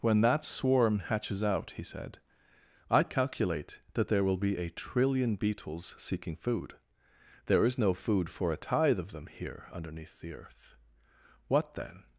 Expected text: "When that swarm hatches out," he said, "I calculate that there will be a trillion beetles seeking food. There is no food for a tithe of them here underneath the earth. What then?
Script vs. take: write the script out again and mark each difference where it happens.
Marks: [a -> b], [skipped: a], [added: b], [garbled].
"When that swarm hatches out," he said, "I calculate that there will be a trillion beetles seeking food. There is no food for a tithe of them here underneath the earth. What then?